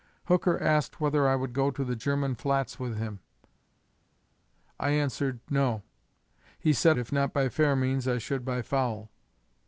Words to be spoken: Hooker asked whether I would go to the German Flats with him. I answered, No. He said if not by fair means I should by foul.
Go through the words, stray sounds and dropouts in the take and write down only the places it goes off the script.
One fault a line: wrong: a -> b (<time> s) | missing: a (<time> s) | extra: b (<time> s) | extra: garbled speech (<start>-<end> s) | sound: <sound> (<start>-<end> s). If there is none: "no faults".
no faults